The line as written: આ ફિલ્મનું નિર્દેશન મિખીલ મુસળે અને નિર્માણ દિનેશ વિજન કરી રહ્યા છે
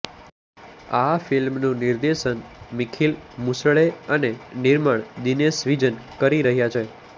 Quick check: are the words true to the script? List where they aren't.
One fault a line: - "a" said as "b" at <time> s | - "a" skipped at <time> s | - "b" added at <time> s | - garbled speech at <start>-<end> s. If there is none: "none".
none